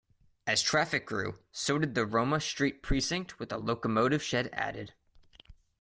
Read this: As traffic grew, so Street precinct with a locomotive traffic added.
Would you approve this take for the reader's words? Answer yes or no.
no